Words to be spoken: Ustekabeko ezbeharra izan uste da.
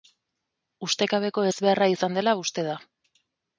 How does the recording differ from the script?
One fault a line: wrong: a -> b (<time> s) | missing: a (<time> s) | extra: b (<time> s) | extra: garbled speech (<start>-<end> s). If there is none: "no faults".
extra: dela (2.2 s)